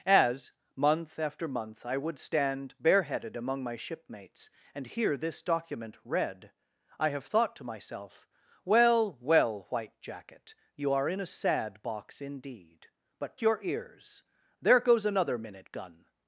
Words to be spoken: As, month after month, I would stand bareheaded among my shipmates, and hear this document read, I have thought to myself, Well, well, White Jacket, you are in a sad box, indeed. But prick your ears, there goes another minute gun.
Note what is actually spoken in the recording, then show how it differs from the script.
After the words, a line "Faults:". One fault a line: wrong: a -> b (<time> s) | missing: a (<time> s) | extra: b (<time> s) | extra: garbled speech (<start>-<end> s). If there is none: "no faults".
As, month after month, I would stand bareheaded among my shipmates, and hear this document read, I have thought to myself, Well, well, White Jacket, you are in a sad box, indeed. But your ears, there goes another minute gun.
Faults:
missing: prick (13.4 s)